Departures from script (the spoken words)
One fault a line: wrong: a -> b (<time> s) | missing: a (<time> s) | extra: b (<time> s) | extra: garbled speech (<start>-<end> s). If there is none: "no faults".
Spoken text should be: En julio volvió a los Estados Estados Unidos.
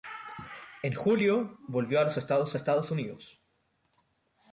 no faults